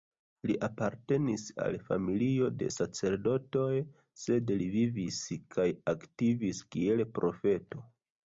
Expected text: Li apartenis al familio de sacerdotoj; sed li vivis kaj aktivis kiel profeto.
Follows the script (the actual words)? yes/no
yes